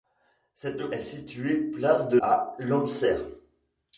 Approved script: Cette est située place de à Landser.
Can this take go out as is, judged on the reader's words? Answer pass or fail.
pass